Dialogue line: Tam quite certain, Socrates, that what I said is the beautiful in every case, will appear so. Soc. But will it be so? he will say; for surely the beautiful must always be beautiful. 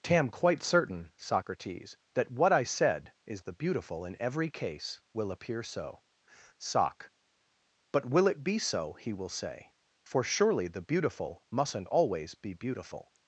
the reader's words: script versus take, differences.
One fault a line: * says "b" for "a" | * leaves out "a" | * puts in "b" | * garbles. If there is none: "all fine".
* says "mustn't" for "must"